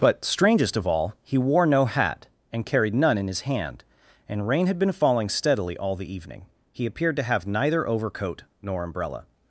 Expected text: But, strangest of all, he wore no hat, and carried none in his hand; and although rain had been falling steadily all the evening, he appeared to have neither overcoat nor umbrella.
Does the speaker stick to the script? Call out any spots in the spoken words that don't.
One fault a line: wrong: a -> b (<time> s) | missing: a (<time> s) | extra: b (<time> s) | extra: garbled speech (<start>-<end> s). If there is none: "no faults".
missing: although (4.5 s)